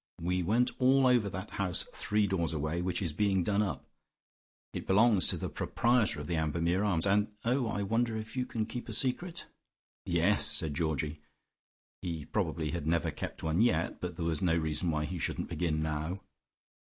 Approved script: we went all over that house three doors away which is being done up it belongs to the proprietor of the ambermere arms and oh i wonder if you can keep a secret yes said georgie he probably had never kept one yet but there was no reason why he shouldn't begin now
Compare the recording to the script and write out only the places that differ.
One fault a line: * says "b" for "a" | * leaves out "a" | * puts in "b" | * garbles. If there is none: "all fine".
all fine